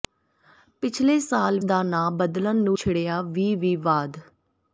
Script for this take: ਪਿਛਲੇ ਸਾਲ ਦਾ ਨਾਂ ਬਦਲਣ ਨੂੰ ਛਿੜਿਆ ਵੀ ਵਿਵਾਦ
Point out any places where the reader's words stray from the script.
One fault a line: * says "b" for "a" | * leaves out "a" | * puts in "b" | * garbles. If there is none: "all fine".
all fine